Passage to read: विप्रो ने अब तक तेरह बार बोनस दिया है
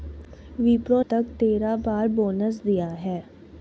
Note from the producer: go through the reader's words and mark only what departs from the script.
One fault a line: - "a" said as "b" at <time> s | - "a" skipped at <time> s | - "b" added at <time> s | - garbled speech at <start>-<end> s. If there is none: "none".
- "ने अब" skipped at 1.0 s